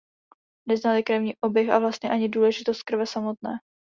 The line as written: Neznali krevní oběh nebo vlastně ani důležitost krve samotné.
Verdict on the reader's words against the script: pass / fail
fail